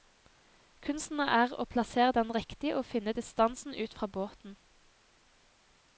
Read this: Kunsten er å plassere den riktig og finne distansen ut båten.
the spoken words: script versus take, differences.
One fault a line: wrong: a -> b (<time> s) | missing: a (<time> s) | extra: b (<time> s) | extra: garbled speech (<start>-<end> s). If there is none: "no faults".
extra: fra (4.0 s)